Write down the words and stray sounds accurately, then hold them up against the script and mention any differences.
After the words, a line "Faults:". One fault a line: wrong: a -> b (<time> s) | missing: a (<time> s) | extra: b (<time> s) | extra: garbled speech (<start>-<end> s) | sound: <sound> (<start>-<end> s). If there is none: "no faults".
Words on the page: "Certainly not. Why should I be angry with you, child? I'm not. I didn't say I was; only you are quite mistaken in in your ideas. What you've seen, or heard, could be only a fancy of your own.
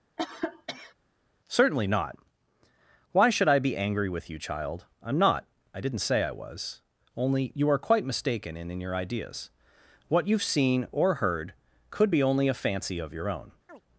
"Certainly not. Why should I be angry with you, child? I'm not. I didn't say I was; only you are quite mistaken in in your ideas. What you've seen, or heard, could be only a fancy of your own.
Faults:
sound: cough (0.2-0.9 s)
sound: chirp (13.7-13.8 s)